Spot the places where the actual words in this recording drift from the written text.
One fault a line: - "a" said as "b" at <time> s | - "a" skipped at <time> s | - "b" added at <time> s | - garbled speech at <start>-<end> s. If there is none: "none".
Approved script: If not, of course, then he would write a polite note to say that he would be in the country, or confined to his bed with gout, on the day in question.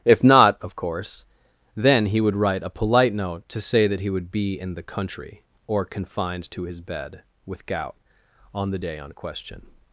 - "in" said as "on" at 9.0 s